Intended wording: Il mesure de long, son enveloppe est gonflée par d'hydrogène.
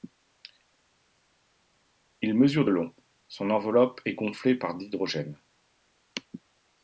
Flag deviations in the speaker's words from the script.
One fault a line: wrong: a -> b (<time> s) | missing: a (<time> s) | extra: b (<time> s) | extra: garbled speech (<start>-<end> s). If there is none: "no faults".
no faults